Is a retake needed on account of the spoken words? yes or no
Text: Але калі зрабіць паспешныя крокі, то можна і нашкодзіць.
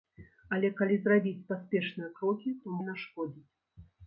yes